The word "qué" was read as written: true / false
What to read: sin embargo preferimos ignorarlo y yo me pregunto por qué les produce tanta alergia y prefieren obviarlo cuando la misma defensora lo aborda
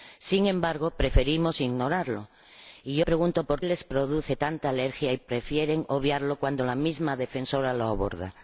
false